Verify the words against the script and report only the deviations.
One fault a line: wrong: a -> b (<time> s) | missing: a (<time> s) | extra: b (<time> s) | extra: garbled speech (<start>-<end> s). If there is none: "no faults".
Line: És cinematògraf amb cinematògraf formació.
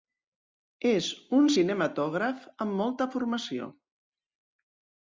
extra: un (1.4 s)
wrong: cinematògraf -> molta (2.8 s)